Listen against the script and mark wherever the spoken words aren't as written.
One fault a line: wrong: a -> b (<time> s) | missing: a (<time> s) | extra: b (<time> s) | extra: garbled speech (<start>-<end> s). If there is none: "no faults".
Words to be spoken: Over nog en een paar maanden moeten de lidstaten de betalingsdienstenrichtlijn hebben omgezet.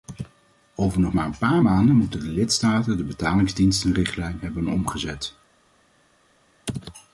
wrong: en -> maar (1.1 s)